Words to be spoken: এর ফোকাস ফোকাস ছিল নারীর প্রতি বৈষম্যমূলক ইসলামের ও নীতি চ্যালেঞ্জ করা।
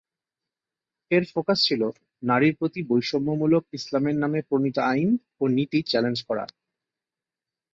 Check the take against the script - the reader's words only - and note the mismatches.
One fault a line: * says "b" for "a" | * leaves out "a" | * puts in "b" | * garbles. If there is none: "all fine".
* leaves out "ফোকাস"
* puts in "নামে প্রণীত আইন"